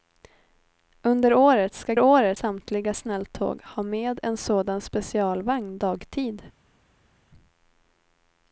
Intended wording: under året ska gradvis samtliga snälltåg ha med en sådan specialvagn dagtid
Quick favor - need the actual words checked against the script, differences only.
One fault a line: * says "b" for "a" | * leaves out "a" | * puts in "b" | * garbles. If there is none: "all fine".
* says "året" for "gradvis"